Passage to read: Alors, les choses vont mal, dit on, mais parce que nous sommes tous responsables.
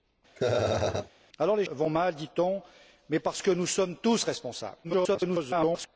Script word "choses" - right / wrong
wrong